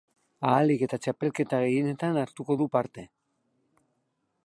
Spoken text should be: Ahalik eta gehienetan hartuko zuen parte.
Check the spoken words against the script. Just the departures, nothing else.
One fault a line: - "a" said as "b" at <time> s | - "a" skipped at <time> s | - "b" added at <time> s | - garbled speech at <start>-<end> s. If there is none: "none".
- "txapelketa" added at 1.1 s
- "zuen" said as "du" at 2.6 s